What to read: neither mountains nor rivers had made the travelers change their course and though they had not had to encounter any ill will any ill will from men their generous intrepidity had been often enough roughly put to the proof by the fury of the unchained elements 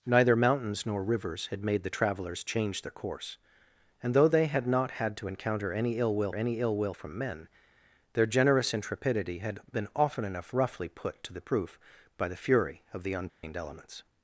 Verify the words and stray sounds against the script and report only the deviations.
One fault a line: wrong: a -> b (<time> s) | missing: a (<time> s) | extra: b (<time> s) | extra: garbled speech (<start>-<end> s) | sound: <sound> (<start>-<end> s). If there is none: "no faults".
sound: dropout (13.3-13.4 s)